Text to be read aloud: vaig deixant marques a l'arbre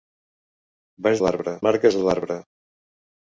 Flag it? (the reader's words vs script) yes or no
yes